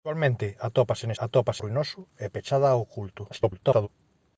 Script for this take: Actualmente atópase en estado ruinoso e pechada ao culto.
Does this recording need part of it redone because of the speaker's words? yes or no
yes